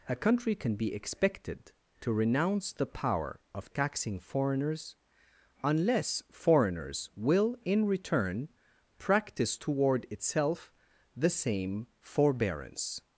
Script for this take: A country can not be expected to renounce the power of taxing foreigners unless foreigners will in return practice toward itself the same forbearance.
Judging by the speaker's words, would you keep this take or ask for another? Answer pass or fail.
fail